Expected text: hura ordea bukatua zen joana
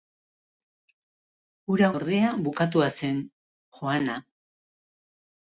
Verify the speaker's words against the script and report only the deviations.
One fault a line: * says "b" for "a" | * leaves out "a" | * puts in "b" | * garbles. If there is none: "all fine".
all fine